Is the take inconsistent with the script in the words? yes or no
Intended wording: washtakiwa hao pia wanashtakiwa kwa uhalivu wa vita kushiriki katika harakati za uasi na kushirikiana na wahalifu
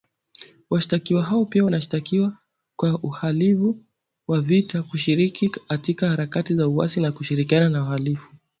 no